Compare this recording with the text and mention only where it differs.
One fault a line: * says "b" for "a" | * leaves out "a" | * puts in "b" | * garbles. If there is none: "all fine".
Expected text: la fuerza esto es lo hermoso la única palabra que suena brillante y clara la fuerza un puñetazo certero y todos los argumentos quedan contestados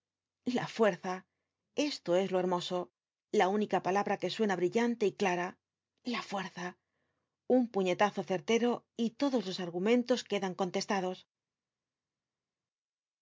all fine